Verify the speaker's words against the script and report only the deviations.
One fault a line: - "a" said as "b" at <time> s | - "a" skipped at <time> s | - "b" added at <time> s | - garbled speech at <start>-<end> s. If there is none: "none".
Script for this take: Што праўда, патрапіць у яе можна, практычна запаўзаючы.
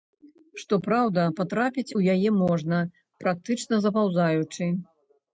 none